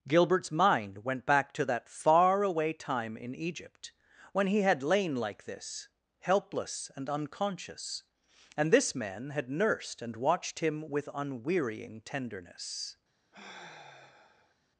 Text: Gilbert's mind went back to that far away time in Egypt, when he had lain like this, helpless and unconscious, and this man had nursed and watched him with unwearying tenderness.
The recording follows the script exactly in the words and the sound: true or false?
false